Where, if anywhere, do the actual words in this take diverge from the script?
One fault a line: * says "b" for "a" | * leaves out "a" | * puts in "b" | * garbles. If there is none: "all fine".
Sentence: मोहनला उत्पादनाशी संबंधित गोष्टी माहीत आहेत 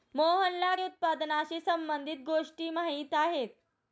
all fine